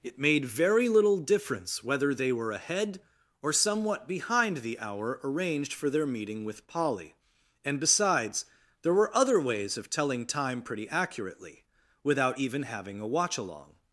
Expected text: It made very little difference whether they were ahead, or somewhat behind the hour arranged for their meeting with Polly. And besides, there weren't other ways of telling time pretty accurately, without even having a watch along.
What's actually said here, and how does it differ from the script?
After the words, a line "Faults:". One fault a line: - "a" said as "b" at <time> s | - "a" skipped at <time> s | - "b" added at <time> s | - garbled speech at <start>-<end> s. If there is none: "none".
It made very little difference whether they were ahead, or somewhat behind the hour arranged for their meeting with Polly. And besides, there were other ways of telling time pretty accurately, without even having a watch along.
Faults:
- "weren't" said as "were" at 8.9 s